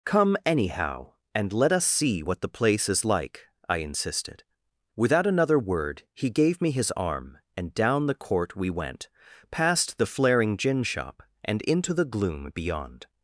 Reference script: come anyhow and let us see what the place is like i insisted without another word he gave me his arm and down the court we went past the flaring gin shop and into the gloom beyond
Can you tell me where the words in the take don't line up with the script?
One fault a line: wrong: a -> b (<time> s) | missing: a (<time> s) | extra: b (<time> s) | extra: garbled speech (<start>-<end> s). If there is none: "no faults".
no faults